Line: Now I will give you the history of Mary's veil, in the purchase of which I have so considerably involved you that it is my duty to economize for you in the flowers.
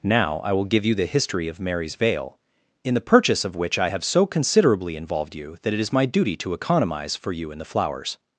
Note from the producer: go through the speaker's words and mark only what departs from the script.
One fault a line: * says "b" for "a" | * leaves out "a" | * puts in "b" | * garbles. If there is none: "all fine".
all fine